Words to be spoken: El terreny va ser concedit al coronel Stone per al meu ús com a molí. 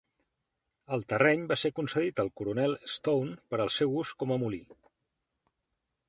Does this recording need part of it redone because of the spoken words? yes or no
yes